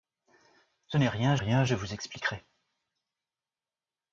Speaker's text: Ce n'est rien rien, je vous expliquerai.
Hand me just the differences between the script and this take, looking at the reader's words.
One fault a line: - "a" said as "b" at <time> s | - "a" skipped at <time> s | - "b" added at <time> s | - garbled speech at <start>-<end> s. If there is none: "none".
none